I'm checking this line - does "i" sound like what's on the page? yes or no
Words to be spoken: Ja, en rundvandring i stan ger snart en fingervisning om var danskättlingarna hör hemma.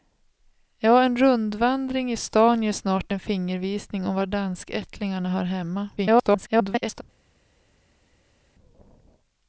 yes